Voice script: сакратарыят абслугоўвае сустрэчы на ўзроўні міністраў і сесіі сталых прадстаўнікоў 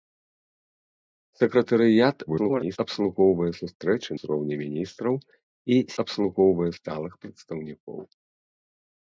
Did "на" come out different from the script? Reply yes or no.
yes